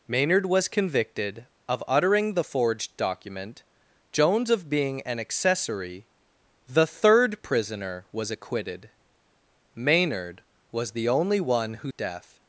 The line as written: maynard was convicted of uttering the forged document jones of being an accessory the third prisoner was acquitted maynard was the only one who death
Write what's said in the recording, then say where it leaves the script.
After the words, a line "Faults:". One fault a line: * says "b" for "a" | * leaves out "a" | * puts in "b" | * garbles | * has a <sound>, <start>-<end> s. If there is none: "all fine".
maynard was convicted of uttering the forged document jones of being an accessory the third prisoner was acquitted maynard was the only one who death
Faults:
all fine